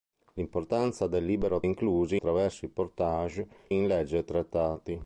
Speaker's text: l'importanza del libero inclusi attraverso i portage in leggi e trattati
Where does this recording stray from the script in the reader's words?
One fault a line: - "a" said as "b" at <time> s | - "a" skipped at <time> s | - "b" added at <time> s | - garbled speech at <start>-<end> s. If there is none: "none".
none